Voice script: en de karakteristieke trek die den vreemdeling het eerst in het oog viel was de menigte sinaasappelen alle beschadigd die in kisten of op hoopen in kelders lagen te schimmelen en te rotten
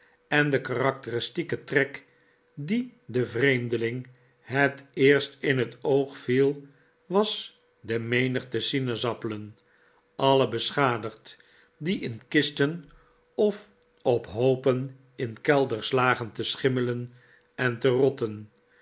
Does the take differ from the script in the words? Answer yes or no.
no